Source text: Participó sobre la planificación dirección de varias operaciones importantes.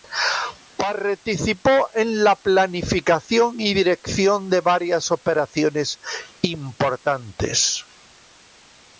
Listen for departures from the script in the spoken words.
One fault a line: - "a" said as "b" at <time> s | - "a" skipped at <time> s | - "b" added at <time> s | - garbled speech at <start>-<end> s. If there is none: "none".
- "sobre" said as "en" at 1.9 s
- "y" added at 3.6 s